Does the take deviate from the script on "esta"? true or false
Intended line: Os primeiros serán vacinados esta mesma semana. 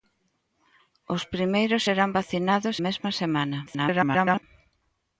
true